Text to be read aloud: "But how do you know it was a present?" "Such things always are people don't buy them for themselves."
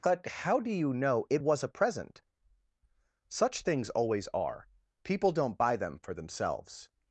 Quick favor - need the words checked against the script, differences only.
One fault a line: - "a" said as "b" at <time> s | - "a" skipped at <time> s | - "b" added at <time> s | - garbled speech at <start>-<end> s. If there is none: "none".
none